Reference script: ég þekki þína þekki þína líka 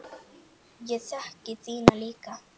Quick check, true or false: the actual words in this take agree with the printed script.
false